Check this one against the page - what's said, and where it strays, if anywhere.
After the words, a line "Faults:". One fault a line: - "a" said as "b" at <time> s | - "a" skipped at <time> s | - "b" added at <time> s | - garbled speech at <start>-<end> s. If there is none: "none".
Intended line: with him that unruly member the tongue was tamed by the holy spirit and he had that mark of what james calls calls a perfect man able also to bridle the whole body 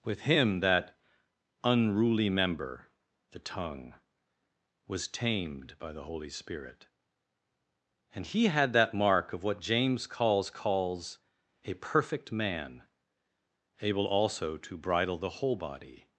with him that unruly member the tongue was tamed by the holy spirit and he had that mark of what james calls calls a perfect man able also to bridle the whole body
Faults:
none